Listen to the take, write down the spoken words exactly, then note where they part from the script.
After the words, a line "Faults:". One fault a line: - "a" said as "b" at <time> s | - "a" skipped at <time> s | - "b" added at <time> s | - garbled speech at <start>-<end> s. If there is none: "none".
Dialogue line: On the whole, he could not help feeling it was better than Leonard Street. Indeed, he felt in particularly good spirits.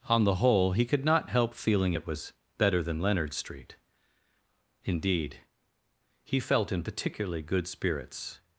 On the whole, he could not help feeling it was better than Leonard Street. Indeed, he felt in particularly good spirits.
Faults:
none